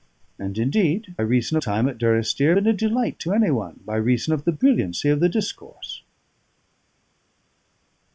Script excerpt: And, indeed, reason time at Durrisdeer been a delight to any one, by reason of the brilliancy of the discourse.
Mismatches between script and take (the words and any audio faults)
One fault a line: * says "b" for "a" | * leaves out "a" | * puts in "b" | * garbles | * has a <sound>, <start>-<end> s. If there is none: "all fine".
all fine